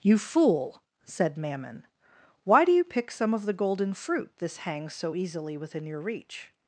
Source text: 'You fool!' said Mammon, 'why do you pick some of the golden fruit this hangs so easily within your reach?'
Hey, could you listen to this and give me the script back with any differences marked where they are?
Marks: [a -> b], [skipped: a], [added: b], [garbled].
'You fool!' said Mammon, 'why do you pick some of the golden fruit this hangs so easily within your reach?'